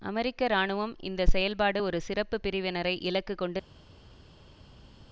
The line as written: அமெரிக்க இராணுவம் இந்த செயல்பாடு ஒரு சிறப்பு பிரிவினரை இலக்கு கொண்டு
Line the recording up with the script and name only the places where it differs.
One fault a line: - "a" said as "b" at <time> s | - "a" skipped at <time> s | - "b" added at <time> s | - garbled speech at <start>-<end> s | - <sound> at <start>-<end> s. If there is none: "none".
none